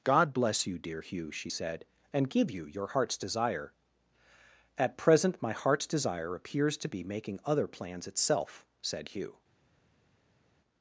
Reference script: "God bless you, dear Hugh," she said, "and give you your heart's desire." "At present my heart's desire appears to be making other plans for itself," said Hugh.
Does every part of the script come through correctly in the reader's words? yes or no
no